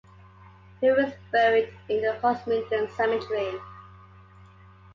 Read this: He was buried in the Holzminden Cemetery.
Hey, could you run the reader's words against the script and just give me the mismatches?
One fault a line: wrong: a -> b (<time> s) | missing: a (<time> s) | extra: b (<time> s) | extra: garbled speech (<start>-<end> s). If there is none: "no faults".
no faults